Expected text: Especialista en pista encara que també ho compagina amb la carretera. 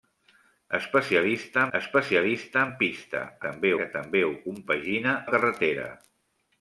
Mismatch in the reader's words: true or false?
true